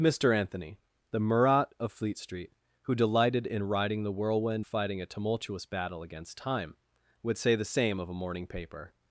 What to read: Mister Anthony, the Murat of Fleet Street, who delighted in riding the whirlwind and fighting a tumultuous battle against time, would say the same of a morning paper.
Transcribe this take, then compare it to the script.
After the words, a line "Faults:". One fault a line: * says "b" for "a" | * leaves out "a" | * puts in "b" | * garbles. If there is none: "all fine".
Mister Anthony, the Murat of Fleet Street, who delighted in riding the whirlwind fighting a tumultuous battle against time, would say the same of a morning paper.
Faults:
* leaves out "and"